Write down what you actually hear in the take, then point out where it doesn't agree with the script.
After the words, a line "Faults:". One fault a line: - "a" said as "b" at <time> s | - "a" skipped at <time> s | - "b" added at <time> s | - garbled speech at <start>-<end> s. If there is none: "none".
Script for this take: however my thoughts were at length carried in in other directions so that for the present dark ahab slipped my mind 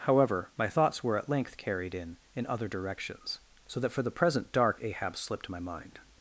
however my thoughts were at length carried in in other directions so that for the present dark ahab slipped my mind
Faults:
none